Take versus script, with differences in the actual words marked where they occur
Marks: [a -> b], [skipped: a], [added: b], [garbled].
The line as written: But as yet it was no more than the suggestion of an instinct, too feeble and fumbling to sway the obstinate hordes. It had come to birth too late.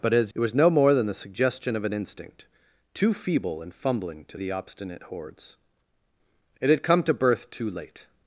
But as [skipped: yet] it was no more than the suggestion of an instinct, too feeble and fumbling to [skipped: sway] the obstinate hordes. It had come to birth too late.